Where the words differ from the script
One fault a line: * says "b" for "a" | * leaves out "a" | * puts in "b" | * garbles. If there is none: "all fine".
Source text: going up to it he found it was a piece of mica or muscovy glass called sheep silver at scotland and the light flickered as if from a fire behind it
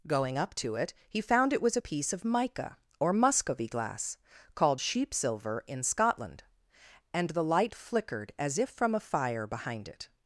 * says "in" for "at"